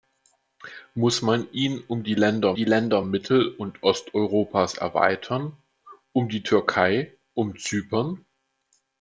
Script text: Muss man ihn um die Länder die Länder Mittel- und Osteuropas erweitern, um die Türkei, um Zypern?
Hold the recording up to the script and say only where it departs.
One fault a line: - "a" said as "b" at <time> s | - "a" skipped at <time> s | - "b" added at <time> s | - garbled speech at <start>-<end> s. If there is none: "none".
none